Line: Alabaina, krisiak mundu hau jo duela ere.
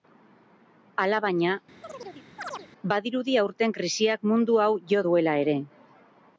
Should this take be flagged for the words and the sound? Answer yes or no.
yes